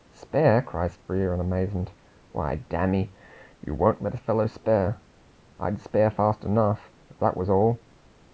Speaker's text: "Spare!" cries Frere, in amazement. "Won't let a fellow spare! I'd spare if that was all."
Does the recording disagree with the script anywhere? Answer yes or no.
yes